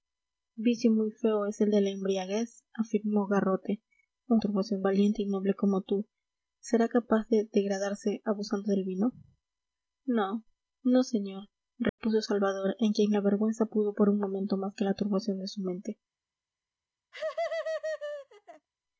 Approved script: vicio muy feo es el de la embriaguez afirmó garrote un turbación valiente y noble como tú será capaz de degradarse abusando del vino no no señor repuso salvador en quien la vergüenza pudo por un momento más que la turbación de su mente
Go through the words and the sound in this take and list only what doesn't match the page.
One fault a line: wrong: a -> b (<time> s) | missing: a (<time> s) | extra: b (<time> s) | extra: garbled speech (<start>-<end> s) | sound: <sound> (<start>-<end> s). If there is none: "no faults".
sound: dropout (11.9-12.0 s)
sound: laugh (17.1-18.7 s)